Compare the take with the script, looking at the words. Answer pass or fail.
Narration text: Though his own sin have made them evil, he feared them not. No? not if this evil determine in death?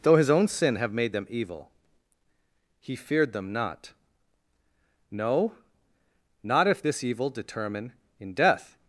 pass